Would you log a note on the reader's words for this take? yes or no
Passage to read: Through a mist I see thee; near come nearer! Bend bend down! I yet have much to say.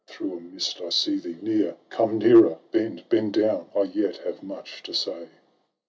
no